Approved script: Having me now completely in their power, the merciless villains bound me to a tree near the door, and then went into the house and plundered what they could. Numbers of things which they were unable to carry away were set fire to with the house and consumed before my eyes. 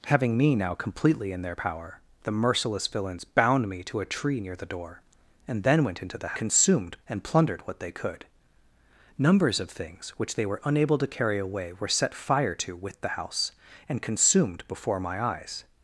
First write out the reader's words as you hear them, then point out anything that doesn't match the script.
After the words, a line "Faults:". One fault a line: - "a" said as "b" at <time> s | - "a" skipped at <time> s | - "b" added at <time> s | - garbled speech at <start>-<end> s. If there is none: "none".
Having me now completely in their power, the merciless villains bound me to a tree near the door, and then went into the consumed and plundered what they could. Numbers of things which they were unable to carry away were set fire to with the house and consumed before my eyes.
Faults:
- "house" said as "consumed" at 6.3 s